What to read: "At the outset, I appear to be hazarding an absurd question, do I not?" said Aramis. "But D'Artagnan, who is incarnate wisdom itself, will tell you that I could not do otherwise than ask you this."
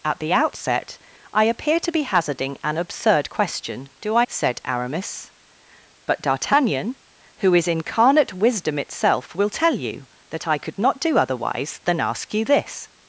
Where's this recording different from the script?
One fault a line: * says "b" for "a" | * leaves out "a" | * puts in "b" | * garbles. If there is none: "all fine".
* leaves out "not"